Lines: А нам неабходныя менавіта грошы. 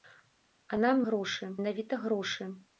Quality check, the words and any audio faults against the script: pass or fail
fail